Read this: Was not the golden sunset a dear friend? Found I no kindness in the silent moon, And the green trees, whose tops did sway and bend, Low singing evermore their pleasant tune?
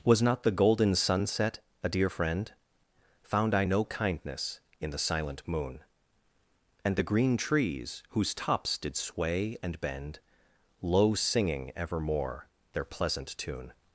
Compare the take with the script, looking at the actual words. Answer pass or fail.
pass